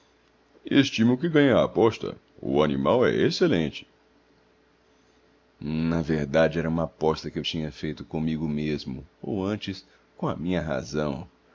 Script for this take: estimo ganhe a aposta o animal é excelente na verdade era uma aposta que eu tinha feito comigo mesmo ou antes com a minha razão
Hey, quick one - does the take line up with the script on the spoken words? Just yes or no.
no